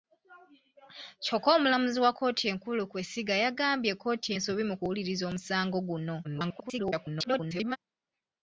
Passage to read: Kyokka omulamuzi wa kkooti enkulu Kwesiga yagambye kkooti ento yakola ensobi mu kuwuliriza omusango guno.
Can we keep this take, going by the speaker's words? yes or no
no